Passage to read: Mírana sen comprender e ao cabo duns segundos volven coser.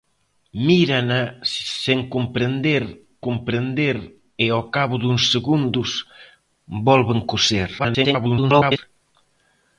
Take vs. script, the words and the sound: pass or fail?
fail